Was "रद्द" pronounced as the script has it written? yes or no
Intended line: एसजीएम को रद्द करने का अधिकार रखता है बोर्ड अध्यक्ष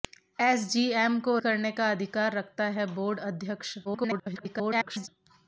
no